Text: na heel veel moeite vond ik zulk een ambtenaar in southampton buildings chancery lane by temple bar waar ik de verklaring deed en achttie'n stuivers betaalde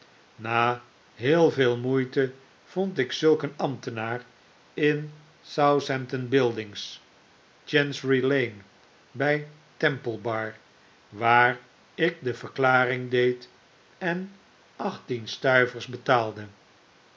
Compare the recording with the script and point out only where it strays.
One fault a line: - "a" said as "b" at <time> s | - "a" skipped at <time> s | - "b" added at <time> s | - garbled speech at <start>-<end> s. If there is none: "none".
none